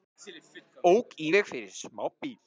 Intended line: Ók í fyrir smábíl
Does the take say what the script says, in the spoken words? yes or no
no